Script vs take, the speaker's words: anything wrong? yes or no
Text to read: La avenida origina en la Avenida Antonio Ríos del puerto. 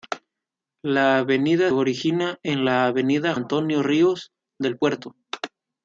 no